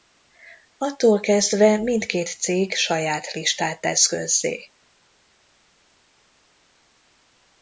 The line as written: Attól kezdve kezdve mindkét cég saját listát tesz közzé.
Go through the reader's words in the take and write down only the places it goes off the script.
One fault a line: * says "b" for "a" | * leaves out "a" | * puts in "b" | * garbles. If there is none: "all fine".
* leaves out "kezdve"